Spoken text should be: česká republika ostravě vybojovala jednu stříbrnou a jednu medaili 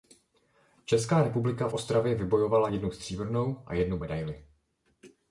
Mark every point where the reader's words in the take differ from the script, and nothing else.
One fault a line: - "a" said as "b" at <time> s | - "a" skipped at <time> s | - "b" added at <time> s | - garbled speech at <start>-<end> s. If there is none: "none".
none